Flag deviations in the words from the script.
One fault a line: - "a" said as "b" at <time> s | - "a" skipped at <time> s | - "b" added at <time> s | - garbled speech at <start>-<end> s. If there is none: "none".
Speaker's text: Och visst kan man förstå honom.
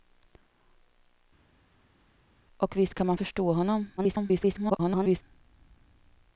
- garbled speech at 4.0-5.2 s